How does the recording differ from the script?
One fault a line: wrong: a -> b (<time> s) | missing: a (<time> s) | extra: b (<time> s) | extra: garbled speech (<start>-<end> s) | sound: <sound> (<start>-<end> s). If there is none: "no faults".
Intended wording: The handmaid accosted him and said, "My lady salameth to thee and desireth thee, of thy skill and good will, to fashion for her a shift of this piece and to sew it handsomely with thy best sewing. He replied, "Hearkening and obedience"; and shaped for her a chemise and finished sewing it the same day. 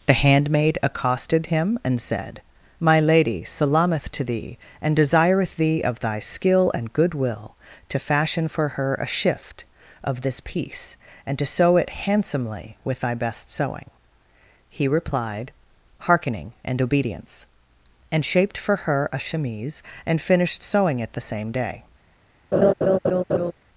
sound: laugh (22.5-23.5 s)